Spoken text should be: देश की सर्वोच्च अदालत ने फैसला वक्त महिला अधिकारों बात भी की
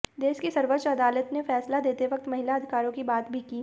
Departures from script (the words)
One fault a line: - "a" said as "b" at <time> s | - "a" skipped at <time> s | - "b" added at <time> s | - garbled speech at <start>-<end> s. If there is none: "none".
- "देते" added at 1.8 s
- "की" added at 2.9 s